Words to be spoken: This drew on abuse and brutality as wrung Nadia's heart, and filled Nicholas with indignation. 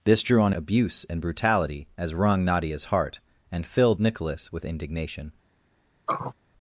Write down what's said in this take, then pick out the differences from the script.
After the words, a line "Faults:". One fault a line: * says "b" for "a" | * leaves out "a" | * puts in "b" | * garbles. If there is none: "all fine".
This drew on abuse and brutality as wrung Nadia's heart, and filled Nicholas with indignation.
Faults:
all fine